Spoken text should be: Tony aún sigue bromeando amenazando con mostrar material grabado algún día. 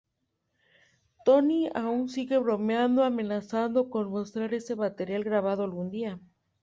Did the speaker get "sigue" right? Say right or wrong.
right